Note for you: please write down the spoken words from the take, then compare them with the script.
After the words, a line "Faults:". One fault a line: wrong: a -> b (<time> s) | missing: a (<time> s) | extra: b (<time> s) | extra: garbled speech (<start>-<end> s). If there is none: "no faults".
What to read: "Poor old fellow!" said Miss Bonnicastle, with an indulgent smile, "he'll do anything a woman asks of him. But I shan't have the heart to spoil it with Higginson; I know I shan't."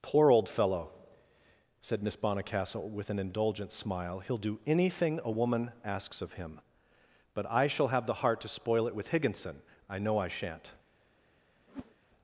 "Poor old fellow!" said Miss Bonnicastle, with an indulgent smile, "he'll do anything a woman asks of him. But I shall have the heart to spoil it with Higginson; I know I shan't."
Faults:
wrong: shan't -> shall (7.7 s)